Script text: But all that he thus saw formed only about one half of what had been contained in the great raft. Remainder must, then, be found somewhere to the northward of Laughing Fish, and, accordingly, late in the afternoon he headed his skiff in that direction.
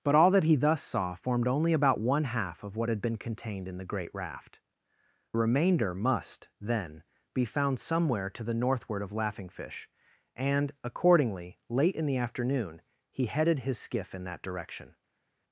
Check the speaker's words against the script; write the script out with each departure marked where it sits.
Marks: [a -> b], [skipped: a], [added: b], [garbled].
But all that he thus saw formed only about one half of what had been contained in the great raft. Remainder must, then, be found somewhere to the northward of Laughing Fish, and, accordingly, late in the afternoon he headed his skiff in that direction.